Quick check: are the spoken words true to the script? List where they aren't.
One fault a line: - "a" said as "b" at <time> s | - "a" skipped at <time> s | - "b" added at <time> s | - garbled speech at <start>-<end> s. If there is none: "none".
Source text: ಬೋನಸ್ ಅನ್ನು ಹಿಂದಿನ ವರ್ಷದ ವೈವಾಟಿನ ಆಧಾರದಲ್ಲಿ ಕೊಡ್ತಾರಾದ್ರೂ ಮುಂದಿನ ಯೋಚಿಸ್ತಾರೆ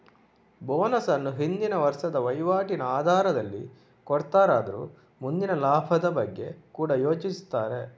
- "ಲಾಭದ ಬಗ್ಗೆ ಕೂಡಾ" added at 5.6 s